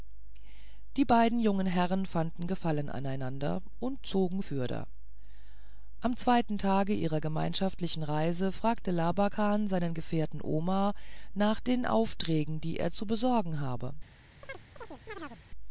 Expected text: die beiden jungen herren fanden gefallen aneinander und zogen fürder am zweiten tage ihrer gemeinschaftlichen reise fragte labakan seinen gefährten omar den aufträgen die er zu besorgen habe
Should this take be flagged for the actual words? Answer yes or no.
yes